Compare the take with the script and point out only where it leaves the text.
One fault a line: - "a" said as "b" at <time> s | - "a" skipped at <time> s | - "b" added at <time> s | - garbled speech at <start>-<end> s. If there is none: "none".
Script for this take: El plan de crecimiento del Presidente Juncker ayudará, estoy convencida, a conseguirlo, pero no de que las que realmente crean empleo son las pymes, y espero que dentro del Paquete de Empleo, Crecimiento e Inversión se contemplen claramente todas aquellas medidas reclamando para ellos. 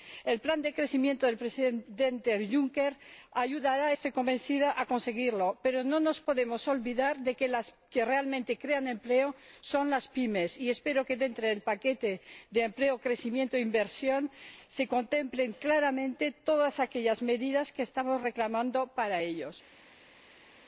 - "nos podemos olvidar" added at 6.0 s
- "que estamos" added at 17.7 s